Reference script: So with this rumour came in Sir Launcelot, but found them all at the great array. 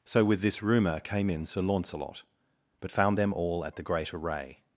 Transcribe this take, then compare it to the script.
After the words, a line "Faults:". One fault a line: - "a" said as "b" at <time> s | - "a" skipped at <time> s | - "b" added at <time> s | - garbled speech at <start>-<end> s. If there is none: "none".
So with this rumour came in Sir Launcelot, but found them all at the great array.
Faults:
none